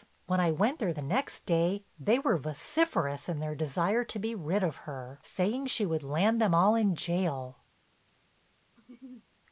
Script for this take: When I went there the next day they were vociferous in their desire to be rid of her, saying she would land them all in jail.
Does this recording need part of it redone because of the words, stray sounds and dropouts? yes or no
yes